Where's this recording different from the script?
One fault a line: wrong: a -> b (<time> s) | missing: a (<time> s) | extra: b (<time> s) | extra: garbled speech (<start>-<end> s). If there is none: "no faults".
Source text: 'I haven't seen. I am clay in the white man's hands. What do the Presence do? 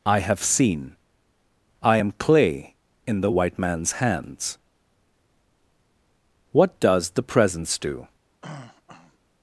wrong: haven't -> have (0.2 s)
wrong: do -> does (6.8 s)